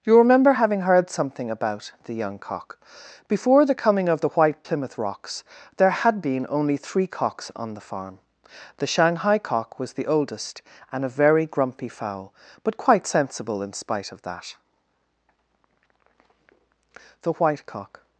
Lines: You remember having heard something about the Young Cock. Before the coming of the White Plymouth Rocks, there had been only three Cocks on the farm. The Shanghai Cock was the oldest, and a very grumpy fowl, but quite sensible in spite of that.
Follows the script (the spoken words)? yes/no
no